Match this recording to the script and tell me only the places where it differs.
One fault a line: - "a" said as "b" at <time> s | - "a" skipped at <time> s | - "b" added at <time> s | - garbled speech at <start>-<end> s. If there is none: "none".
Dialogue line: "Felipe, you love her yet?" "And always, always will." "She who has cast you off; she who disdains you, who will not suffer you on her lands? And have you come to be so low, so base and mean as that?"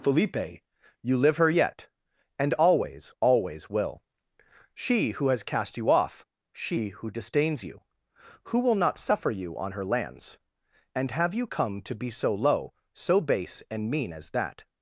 - "love" said as "live" at 1.1 s